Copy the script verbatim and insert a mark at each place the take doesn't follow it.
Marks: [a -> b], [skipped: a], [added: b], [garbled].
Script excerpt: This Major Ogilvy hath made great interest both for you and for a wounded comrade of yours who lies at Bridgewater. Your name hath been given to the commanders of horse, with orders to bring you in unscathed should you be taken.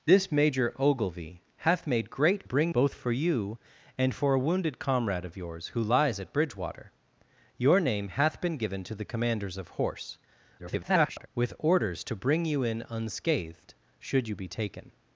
This Major Ogilvy hath made great [interest -> bring] both for you and for a wounded comrade of yours who lies at Bridgewater. Your name hath been given to the commanders of horse, [garbled] with orders to bring you in unscathed should you be taken.